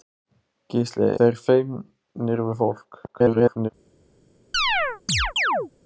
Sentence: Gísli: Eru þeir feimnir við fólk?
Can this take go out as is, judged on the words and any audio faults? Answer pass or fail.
fail